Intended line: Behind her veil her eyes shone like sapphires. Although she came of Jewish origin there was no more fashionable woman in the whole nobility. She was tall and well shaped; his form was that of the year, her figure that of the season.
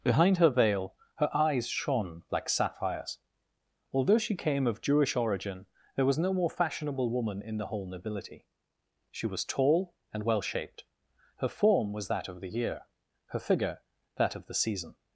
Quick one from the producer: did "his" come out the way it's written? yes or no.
no